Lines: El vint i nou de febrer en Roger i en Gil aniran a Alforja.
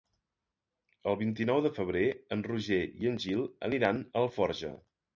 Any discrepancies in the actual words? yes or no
no